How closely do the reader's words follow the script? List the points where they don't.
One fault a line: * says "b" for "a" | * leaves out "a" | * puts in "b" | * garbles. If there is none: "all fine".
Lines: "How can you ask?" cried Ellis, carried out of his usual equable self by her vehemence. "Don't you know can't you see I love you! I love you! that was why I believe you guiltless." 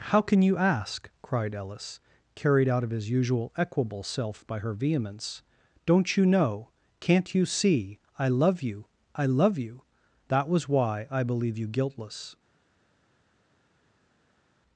all fine